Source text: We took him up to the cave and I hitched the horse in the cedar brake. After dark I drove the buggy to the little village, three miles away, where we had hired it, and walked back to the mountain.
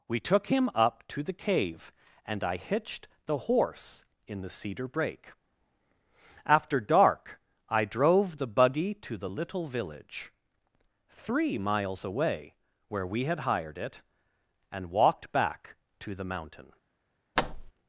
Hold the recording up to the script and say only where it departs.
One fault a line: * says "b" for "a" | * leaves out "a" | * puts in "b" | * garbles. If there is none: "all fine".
all fine